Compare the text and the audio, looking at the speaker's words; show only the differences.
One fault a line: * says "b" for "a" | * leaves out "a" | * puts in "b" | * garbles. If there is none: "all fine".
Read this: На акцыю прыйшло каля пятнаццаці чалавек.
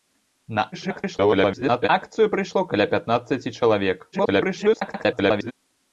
* garbles
* garbles